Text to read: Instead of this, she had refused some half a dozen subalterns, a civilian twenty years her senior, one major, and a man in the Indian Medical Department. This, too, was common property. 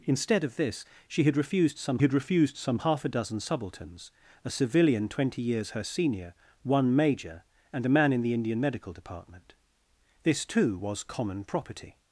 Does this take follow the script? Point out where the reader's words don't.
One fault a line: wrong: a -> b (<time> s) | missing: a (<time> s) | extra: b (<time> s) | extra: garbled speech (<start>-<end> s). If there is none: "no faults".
extra: had refused some (2.0 s)